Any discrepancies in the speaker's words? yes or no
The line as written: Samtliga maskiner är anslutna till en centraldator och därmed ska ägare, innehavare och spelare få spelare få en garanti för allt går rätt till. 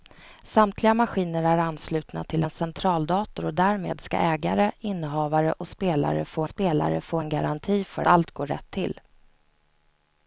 no